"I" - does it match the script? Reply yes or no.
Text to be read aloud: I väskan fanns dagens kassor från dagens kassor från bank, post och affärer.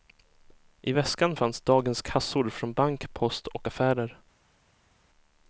yes